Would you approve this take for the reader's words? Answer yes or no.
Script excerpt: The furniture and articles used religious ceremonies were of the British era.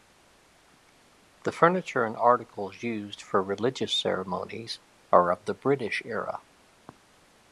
no